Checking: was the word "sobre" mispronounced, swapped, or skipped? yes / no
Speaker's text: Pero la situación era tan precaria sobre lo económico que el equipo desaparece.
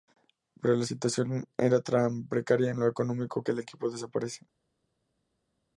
yes